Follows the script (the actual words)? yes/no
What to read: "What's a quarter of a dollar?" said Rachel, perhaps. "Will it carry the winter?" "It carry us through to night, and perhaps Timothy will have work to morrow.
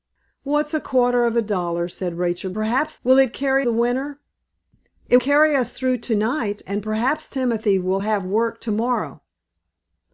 yes